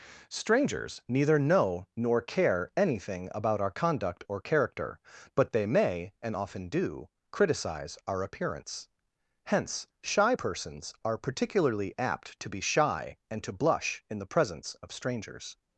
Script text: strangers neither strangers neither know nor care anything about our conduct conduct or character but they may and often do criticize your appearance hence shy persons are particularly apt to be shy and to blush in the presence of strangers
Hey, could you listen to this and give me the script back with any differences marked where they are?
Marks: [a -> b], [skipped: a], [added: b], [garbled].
strangers neither [skipped: strangers neither] know nor care anything about our conduct [skipped: conduct] or character but they may and often do criticize [your -> our] appearance hence shy persons are particularly apt to be shy and to blush in the presence of strangers